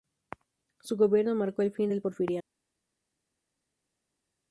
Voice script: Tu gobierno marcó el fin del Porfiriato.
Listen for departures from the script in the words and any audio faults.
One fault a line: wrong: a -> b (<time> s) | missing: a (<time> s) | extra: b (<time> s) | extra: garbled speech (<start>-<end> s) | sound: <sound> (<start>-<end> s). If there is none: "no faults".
wrong: Tu -> Su (0.8 s)